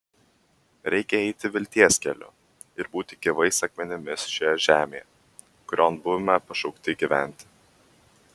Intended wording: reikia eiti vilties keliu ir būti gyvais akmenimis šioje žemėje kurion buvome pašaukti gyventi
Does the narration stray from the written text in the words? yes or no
no